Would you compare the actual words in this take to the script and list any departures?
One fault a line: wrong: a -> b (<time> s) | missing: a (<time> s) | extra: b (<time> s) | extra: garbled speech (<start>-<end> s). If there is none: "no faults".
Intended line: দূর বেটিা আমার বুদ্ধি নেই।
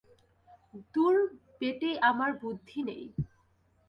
no faults